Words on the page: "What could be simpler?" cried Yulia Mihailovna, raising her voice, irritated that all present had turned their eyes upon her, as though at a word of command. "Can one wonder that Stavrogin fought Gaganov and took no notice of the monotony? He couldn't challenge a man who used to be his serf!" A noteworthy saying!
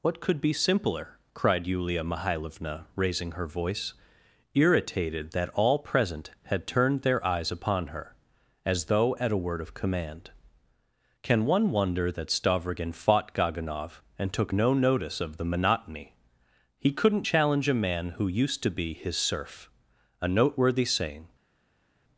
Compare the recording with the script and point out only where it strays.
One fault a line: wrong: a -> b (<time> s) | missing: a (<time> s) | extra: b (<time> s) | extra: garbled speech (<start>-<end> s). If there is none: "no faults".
no faults